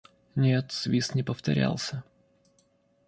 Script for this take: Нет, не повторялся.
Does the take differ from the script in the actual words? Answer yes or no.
yes